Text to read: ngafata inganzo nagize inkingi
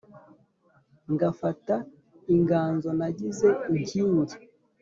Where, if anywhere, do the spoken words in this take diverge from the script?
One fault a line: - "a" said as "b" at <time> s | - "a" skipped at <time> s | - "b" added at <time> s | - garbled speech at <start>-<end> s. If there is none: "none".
none